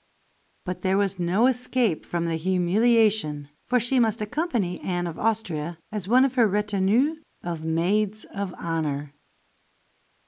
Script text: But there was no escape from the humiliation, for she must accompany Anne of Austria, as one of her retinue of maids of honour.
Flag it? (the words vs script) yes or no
no